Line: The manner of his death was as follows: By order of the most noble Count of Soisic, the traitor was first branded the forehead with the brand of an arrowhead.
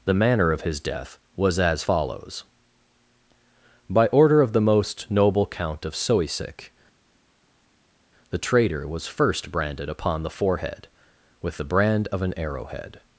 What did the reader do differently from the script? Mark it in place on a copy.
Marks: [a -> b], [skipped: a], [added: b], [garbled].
The manner of his death was as follows: By order of the most noble Count of Soisic, the traitor was first branded [added: upon] the forehead with the brand of an arrowhead.